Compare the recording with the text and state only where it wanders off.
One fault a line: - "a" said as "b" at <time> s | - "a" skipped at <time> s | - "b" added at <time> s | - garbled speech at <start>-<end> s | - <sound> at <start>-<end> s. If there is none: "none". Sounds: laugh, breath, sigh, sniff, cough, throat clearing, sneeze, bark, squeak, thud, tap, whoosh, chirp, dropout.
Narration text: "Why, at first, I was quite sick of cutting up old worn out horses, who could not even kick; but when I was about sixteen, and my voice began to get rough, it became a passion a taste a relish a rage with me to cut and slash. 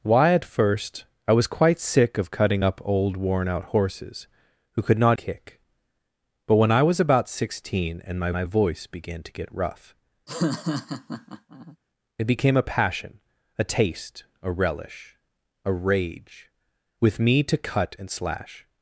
- "even" skipped at 5.2 s
- "my" added at 8.3 s
- laugh at 10.3-11.8 s